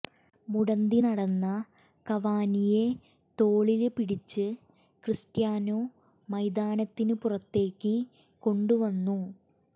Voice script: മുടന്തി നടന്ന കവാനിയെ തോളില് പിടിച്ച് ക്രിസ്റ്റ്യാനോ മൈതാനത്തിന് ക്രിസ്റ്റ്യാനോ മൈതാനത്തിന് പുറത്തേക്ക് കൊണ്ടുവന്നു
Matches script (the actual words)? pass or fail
fail